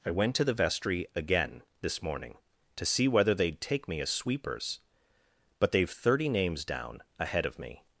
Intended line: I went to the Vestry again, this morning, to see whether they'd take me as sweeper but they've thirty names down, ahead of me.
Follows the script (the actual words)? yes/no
no